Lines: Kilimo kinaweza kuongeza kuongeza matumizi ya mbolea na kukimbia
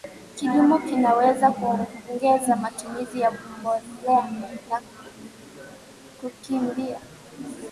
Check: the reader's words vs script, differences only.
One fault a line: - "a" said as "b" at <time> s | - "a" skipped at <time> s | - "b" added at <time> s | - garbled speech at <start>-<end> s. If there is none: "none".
- "kuongeza" skipped at 2.6 s